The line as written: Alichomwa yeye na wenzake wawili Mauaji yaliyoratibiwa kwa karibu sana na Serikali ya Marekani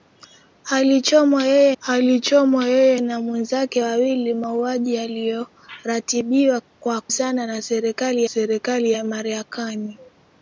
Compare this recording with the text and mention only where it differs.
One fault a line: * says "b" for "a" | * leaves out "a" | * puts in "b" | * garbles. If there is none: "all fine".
* puts in "alichomwa yeye"
* leaves out "karibu"
* puts in "Serikali"